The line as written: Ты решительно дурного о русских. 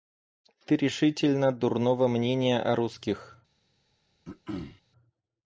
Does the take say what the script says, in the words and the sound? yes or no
no